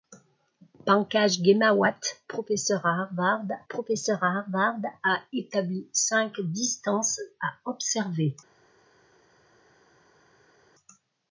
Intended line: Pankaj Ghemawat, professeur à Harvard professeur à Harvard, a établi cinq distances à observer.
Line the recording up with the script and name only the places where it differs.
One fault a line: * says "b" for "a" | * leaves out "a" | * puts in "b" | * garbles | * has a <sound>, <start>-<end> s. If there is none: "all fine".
all fine